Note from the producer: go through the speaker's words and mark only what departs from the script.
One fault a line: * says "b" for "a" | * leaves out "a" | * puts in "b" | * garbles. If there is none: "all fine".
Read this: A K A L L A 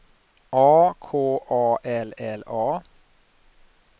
all fine